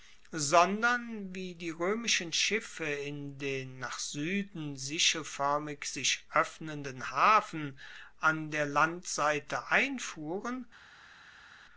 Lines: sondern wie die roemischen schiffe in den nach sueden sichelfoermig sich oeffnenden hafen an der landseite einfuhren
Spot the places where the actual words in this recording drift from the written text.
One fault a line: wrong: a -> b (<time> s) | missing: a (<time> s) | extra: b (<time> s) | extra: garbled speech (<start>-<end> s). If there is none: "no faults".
no faults